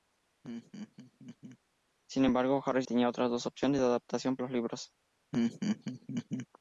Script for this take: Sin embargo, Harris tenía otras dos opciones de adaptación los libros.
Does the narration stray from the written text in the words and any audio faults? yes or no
yes